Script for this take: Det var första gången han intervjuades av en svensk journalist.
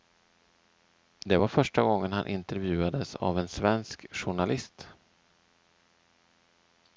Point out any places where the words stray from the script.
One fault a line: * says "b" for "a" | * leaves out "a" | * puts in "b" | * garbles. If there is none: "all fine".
all fine